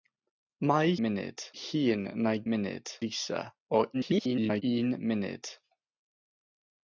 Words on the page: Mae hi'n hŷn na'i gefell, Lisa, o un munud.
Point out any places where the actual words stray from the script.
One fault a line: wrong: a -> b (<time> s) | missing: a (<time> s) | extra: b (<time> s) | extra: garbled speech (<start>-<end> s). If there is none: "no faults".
wrong: hi'n -> munud (1.1 s)
wrong: gefell -> munud (2.5 s)
extra: garbled speech (3.9-4.6 s)